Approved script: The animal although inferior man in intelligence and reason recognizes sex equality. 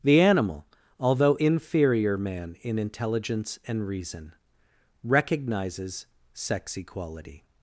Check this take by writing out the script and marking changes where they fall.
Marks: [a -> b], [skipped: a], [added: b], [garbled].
The animal although inferior man in intelligence and reason recognizes sex equality.